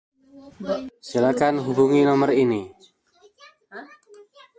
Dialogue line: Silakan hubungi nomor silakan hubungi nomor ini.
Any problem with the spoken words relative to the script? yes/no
yes